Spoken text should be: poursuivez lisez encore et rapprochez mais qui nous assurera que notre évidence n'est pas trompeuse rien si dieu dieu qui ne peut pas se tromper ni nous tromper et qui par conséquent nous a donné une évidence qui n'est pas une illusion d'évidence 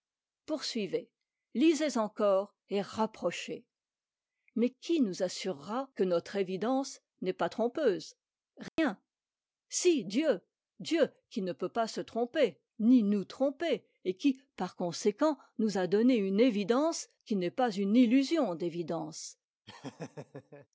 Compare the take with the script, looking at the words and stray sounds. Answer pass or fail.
fail